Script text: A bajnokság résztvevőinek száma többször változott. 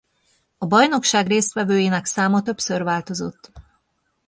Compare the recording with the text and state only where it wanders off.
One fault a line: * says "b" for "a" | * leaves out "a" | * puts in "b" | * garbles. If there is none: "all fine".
all fine